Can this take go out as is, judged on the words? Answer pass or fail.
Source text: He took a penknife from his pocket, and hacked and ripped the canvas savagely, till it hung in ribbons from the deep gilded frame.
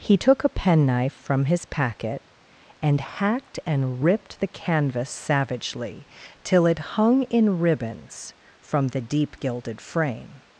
fail